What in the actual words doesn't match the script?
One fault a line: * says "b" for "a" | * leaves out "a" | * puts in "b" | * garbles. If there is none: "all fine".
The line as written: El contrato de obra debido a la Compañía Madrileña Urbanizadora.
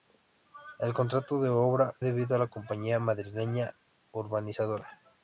all fine